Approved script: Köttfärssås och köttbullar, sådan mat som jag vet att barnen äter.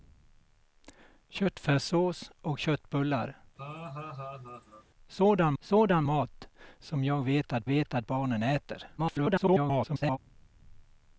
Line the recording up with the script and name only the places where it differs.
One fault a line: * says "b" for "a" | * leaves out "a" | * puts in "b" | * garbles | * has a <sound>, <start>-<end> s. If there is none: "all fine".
* has a laugh, 3.6-4.9 s
* puts in "sådan"
* puts in "vet att"
* garbles